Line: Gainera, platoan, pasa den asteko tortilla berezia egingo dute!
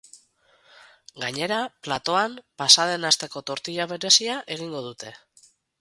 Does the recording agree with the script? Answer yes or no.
yes